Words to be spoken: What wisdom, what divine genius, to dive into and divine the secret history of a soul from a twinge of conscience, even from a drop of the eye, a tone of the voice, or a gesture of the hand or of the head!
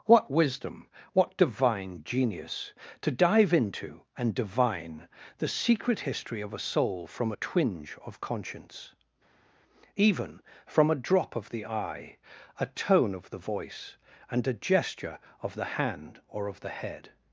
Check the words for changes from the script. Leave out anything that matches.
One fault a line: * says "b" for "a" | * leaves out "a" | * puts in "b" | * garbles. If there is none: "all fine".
* says "and" for "or"